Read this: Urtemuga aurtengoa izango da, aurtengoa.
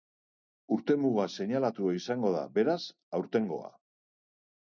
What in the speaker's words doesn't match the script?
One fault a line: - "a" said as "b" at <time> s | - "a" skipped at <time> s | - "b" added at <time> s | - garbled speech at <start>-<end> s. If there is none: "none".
- "aurtengoa" said as "seinalatua" at 1.3 s
- "beraz" added at 2.6 s